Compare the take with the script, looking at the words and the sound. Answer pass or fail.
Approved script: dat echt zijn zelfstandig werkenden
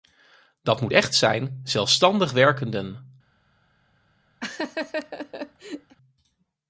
fail